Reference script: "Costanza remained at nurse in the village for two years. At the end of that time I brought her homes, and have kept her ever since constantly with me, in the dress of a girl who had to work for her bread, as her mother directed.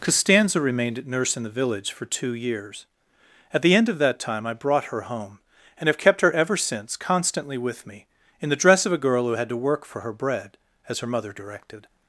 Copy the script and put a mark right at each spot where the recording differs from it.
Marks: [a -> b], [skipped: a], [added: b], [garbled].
"Costanza remained at nurse in the village for two years. At the end of that time I brought her [homes, -> home] and have kept her ever since constantly with me, in the dress of a girl who had to work for her bread, as her mother directed.